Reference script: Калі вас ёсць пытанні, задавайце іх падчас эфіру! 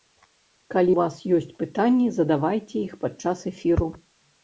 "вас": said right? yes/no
yes